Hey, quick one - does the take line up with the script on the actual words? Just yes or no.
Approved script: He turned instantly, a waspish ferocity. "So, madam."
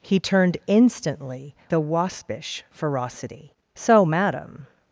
yes